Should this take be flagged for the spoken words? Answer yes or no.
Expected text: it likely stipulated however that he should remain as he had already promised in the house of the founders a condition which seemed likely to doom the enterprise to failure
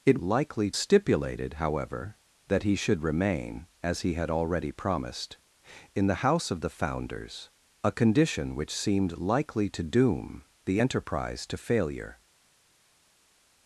no